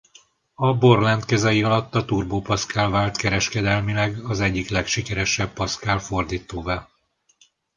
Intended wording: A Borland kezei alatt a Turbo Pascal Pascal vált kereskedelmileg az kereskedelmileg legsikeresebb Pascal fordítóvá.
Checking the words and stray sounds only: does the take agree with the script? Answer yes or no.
no